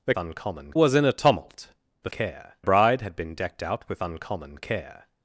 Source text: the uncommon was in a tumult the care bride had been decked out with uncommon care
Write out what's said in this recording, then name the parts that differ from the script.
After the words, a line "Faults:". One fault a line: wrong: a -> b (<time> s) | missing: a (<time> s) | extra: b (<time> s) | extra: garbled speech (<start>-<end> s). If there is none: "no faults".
the uncommon was in a tumult the care bride had been decked out with uncommon care
Faults:
no faults